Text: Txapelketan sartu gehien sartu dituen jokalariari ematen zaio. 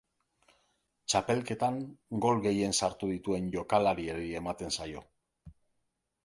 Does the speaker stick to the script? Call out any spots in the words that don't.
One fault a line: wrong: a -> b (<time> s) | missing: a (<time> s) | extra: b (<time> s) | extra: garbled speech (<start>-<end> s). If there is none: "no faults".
wrong: sartu -> gol (2.2 s)